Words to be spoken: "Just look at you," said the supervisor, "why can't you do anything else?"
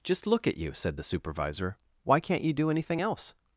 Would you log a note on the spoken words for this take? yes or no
no